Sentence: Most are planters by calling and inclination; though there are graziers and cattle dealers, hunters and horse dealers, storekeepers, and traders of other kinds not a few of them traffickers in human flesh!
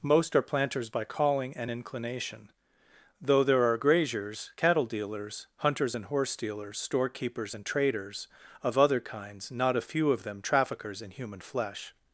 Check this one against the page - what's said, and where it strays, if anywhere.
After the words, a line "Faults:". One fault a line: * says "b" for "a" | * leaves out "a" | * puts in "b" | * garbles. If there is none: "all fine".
Most are planters by calling and inclination; though there are graziers cattle dealers, hunters and horse dealers, storekeepers, and traders of other kinds not a few of them traffickers in human flesh!
Faults:
* leaves out "and"